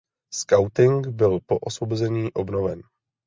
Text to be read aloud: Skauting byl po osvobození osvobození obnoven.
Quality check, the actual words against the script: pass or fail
fail